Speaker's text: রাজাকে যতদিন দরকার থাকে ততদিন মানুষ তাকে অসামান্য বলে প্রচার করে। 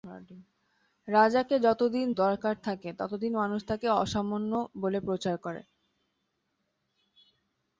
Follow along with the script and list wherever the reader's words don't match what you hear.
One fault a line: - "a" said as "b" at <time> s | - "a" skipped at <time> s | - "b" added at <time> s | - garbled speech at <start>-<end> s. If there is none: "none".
none